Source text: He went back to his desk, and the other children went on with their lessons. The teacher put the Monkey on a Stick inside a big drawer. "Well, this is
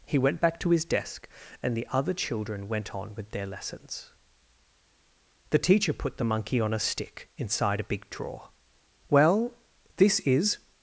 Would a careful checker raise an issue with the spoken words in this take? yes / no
no